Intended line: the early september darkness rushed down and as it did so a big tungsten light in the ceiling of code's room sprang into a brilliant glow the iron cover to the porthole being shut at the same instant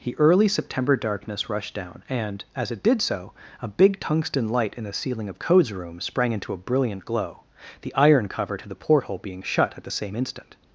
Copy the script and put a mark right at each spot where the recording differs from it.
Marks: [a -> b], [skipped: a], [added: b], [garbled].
the early september darkness rushed down and as it did so a big tungsten light in the ceiling of code's room sprang into a brilliant glow the iron cover to the porthole being shut at the same instant